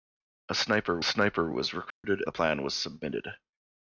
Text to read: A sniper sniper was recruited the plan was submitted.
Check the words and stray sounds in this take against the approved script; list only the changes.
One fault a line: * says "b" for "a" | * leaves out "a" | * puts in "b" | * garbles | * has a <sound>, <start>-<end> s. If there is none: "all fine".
* has a dropout, 1.9-2.0 s